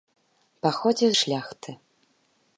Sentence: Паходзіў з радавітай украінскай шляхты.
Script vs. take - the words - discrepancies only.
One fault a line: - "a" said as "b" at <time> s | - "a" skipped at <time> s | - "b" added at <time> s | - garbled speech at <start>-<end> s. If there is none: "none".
- "з радавітай украінскай" skipped at 1.1 s